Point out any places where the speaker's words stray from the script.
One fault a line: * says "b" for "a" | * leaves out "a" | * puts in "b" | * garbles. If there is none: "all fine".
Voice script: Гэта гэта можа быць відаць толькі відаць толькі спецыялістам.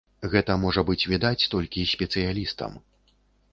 * leaves out "гэта"
* leaves out "відаць толькі"